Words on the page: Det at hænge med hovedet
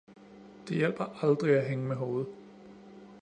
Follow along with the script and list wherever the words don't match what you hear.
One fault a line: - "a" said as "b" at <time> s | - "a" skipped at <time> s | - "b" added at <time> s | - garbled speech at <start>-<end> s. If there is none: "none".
- "hjælper aldrig" added at 0.8 s